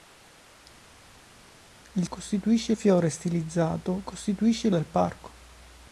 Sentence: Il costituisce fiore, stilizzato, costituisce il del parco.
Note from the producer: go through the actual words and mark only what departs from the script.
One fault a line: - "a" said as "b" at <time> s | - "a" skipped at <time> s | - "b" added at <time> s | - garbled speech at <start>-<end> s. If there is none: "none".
none